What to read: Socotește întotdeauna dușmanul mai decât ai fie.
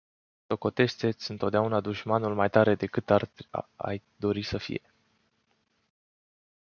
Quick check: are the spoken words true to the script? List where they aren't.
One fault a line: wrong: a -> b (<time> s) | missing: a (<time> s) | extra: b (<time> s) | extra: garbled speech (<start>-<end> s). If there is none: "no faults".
extra: ți (1.1 s)
extra: tare (2.5 s)
extra: dori să (4.2 s)